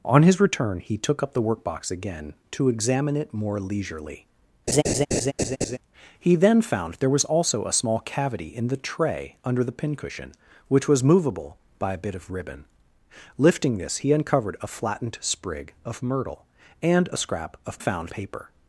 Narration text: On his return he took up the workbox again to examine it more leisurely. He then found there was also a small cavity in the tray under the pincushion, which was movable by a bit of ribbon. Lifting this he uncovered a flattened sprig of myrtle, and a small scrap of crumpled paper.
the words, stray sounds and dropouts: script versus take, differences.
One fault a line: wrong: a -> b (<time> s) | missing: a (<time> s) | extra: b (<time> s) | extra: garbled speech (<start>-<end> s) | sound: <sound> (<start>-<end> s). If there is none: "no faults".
sound: laugh (4.7-5.8 s)
missing: small (17.2 s)
wrong: crumpled -> found (17.8 s)